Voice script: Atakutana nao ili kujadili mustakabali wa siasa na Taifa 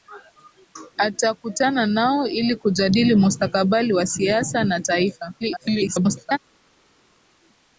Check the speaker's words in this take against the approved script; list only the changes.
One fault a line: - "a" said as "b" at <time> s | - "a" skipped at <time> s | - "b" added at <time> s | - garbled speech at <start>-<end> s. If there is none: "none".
- garbled speech at 5.4-6.4 s